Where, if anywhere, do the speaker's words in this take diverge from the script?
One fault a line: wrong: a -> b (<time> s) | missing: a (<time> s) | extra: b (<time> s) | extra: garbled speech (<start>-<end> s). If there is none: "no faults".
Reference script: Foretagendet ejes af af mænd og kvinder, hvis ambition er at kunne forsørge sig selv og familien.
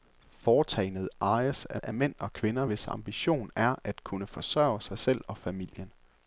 no faults